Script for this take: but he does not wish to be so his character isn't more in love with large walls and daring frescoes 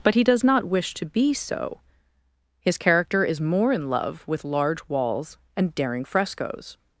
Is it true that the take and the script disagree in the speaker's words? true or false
true